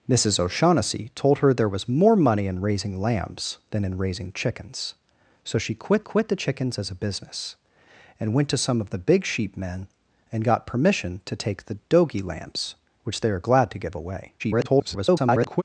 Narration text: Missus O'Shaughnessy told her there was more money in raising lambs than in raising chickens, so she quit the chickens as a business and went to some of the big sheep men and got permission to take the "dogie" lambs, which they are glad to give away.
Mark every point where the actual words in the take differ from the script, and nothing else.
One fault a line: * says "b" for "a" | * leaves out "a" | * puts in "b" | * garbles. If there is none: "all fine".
* puts in "quit"
* garbles